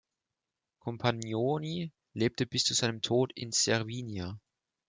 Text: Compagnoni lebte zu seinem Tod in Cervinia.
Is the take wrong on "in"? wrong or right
right